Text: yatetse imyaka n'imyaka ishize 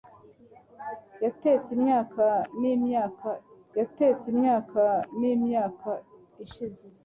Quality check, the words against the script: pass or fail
fail